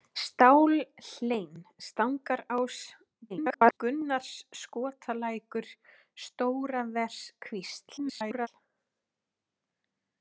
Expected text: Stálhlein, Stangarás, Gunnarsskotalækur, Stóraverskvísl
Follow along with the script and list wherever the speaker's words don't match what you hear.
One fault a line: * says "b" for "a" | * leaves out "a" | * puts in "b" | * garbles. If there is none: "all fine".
* garbles
* garbles